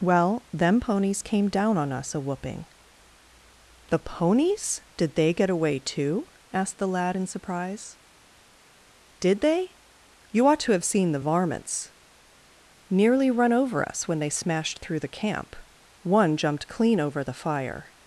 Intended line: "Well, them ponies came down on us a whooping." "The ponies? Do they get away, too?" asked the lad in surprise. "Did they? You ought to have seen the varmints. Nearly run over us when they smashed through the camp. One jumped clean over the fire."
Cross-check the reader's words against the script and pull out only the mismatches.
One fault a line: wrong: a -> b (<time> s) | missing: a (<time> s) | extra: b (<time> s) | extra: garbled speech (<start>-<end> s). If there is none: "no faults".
wrong: Do -> Did (5.0 s)